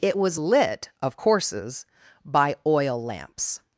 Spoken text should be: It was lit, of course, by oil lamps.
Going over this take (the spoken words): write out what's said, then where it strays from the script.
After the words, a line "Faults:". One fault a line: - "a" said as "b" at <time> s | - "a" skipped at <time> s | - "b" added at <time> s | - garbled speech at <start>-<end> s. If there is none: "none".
It was lit, of courses, by oil lamps.
Faults:
- "course" said as "courses" at 1.1 s